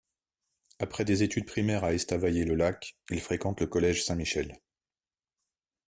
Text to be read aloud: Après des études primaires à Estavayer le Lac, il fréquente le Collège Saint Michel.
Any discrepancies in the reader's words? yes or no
no